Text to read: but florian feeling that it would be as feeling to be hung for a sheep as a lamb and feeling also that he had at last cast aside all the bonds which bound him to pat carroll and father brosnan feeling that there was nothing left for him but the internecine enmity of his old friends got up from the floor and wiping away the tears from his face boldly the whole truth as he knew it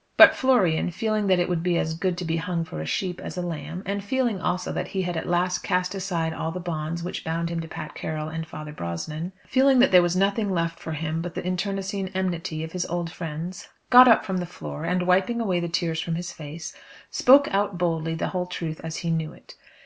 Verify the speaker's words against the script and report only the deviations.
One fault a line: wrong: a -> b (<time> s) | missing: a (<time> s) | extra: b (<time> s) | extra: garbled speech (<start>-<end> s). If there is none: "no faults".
wrong: feeling -> good (1.9 s)
extra: spoke out (17.1 s)